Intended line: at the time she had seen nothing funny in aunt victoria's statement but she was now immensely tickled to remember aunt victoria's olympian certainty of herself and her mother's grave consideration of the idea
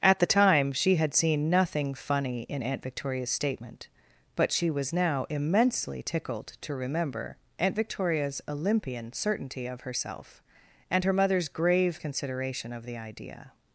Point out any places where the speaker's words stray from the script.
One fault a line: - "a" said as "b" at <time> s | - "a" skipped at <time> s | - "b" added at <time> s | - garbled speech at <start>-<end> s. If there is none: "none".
none